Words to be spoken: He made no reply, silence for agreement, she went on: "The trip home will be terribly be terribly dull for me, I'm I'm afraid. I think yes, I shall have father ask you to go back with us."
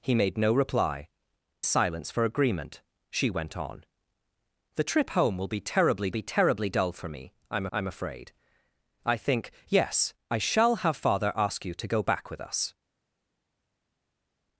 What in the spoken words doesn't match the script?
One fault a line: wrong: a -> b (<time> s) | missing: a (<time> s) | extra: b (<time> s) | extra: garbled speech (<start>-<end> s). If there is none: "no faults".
no faults